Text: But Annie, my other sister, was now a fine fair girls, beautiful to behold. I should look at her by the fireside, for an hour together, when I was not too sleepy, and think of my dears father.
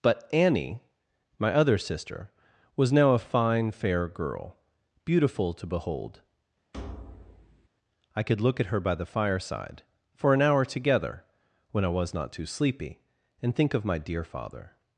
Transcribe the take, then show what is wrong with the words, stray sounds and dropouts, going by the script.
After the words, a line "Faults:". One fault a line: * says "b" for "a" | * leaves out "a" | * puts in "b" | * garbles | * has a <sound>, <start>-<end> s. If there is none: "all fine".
But Annie, my other sister, was now a fine fair girl, beautiful to behold. I could look at her by the fireside, for an hour together, when I was not too sleepy, and think of my dear father.
Faults:
* says "girl" for "girls"
* has a thud, 6.7-7.7 s
* says "could" for "should"
* says "dear" for "dears"